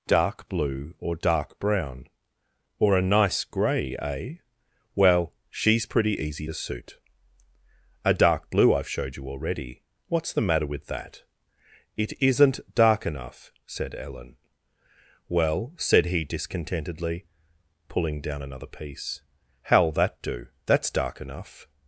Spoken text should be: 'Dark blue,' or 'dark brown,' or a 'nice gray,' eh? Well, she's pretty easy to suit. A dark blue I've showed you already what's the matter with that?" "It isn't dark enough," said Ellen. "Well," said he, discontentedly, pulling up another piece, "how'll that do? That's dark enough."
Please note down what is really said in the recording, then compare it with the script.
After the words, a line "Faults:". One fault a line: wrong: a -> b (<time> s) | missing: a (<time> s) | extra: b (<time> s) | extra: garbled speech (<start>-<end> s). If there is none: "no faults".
'Dark blue,' or 'dark brown,' or a 'nice gray,' eh? Well, she's pretty easy to suit. A dark blue I've showed you already what's the matter with that?" "It isn't dark enough," said Ellen. "Well," said he, discontentedly, pulling down another piece, "how'll that do? That's dark enough."
Faults:
wrong: up -> down (18.2 s)